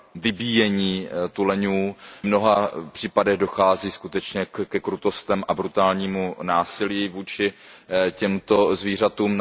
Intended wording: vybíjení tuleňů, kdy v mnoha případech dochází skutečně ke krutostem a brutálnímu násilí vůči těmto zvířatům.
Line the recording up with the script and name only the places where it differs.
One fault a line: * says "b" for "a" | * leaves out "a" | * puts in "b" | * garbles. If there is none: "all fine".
* leaves out "kdy"